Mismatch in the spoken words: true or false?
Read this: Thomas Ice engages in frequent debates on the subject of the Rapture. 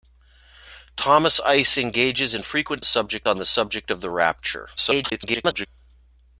true